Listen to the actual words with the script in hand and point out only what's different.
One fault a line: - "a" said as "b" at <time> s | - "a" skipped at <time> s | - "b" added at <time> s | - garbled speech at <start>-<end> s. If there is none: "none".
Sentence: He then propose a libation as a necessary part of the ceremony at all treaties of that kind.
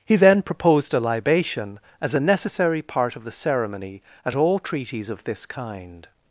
- "propose" said as "proposed" at 0.4 s
- "that" said as "this" at 5.2 s